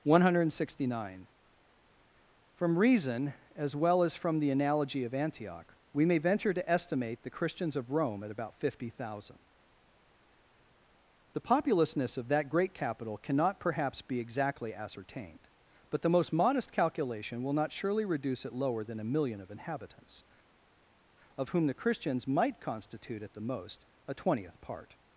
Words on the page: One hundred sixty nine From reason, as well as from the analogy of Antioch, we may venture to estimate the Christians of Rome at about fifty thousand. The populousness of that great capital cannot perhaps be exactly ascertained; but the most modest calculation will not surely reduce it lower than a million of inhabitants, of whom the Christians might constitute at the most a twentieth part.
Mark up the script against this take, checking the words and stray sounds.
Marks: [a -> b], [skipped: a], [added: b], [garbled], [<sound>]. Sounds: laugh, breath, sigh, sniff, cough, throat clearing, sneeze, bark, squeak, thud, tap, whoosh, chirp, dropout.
One hundred sixty nine From reason, as well as from the analogy of Antioch, we may venture to estimate the Christians of Rome at about fifty thousand. The populousness of that great capital cannot perhaps be exactly ascertained; but the most modest calculation will not surely reduce it lower than a million of inhabitants, of whom the Christians might constitute at the most a twentieth part.